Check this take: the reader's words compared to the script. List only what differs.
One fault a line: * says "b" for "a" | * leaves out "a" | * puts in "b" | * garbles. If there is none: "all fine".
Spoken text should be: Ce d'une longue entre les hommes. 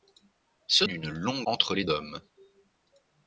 all fine